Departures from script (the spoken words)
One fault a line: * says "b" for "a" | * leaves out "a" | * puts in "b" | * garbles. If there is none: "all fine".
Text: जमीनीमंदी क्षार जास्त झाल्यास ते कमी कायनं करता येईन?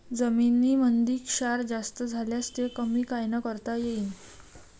all fine